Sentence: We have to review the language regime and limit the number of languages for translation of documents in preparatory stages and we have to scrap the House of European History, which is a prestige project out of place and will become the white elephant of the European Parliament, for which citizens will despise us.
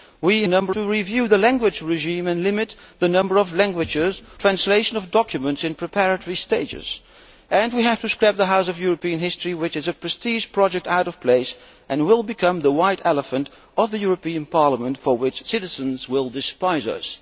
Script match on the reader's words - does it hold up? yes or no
no